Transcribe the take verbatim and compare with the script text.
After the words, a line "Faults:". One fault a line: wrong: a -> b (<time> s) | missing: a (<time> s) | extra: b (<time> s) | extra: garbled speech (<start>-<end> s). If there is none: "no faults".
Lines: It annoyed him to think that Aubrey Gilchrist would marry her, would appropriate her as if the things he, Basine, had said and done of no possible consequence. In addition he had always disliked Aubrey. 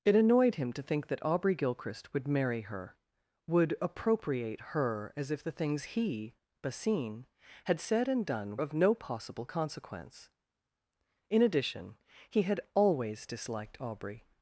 It annoyed him to think that Aubrey Gilchrist would marry her, would appropriate her as if the things he, Basine, had said and done of no possible consequence. In addition he had always disliked Aubrey.
Faults:
no faults